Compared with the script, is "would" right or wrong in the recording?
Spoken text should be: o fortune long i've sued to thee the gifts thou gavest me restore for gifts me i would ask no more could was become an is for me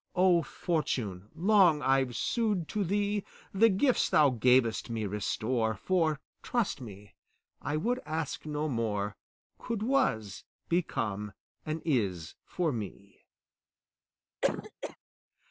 right